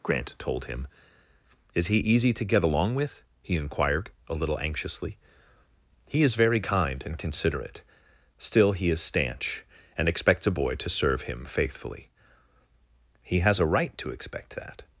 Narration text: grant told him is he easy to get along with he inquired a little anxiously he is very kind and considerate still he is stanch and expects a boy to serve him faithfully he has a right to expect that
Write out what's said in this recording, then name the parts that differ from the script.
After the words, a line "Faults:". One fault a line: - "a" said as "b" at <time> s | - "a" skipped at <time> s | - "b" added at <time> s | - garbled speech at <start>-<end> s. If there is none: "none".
grant told him is he easy to get along with he inquired a little anxiously he is very kind and considerate still he is stanch and expects a boy to serve him faithfully he has a right to expect that
Faults:
none